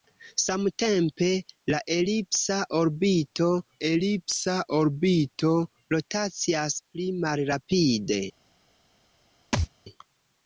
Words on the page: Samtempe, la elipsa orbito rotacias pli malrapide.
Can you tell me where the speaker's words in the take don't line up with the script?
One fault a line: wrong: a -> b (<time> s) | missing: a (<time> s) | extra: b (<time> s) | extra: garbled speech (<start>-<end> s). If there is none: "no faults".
extra: elipsa orbito (3.9 s)